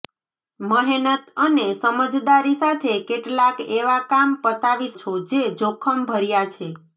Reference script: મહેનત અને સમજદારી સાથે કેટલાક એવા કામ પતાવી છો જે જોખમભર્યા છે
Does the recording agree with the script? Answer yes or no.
yes